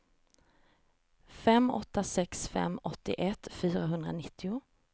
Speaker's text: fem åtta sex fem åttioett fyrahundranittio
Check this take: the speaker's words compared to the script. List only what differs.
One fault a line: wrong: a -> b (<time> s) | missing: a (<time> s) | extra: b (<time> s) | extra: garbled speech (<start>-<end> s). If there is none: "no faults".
no faults